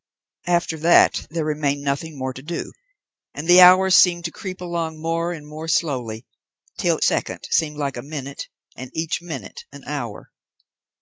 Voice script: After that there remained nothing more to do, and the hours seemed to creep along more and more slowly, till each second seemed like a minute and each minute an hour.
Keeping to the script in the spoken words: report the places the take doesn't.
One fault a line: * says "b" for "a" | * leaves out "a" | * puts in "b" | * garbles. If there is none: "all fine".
* leaves out "each"